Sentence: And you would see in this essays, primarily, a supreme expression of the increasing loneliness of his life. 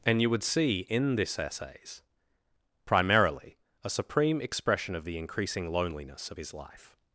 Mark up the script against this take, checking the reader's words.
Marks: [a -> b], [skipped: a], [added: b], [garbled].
And you would see in this essays, primarily, a supreme expression of the increasing loneliness of his life.